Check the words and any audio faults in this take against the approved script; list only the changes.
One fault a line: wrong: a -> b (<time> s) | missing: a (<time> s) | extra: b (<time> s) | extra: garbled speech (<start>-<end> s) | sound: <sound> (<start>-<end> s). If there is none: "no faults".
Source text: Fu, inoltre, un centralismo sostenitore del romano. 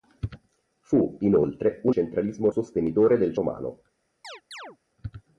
sound: chirp (4.2-4.8 s)